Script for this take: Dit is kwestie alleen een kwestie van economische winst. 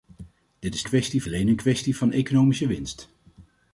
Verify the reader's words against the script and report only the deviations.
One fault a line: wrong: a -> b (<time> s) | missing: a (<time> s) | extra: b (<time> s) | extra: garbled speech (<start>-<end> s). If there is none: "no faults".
no faults